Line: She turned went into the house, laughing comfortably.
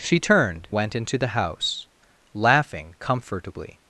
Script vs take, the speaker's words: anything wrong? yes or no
no